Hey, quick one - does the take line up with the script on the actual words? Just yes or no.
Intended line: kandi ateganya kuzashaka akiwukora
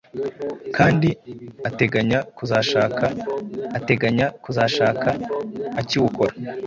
no